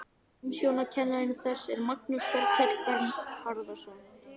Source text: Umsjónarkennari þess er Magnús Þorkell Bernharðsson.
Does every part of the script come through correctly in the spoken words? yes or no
yes